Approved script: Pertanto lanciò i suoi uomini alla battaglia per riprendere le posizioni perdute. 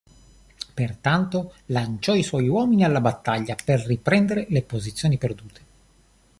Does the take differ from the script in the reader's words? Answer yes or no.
no